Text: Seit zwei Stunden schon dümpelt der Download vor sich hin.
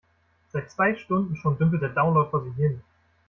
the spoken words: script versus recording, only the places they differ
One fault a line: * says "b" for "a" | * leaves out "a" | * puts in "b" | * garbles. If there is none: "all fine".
all fine